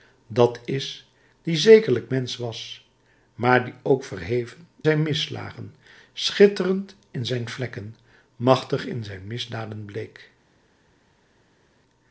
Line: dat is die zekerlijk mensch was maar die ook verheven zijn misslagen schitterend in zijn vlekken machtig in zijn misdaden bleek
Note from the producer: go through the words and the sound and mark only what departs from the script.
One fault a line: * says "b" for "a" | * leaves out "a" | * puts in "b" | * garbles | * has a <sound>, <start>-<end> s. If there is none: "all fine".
all fine